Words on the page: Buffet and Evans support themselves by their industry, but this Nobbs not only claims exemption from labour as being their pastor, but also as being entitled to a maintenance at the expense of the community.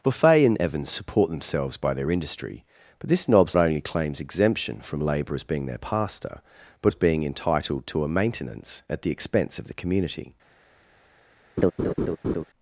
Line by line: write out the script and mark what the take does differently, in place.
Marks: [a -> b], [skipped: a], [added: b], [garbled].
Buffet and Evans support themselves by their industry, but this Nobbs [skipped: not] only claims exemption from labour as being their pastor, but [skipped: also] as being entitled to a maintenance at the expense of the community.